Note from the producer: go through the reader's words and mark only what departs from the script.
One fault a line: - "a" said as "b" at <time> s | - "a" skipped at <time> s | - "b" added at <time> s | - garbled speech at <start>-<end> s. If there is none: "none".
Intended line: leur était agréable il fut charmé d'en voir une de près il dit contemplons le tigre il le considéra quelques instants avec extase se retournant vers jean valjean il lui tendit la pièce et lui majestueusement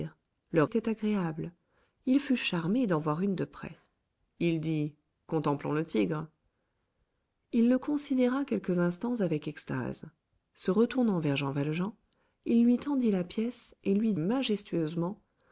none